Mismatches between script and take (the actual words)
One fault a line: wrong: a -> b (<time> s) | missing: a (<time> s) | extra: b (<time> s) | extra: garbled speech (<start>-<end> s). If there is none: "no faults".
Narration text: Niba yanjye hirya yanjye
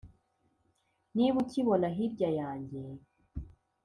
wrong: yanjye -> ukibona (1.4 s)